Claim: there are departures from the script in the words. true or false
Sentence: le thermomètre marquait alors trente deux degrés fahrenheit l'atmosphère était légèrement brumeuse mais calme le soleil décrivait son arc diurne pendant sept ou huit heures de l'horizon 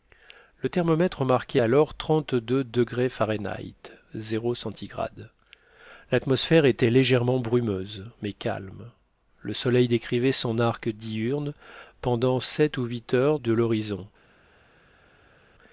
false